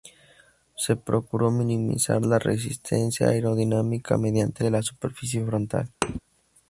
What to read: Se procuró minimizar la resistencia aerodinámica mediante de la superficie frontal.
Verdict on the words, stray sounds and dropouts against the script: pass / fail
fail